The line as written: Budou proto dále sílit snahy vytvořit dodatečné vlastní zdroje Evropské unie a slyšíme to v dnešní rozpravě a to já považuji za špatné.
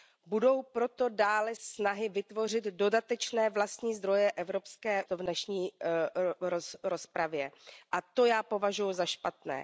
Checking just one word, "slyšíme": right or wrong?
wrong